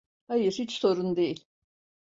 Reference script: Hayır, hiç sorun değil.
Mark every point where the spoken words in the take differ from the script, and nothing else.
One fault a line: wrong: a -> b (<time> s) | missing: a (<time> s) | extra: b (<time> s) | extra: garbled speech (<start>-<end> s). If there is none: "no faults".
no faults